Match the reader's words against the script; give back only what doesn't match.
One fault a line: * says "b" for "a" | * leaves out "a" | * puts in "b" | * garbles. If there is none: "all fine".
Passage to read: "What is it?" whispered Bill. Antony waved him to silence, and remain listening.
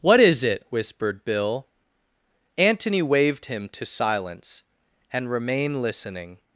all fine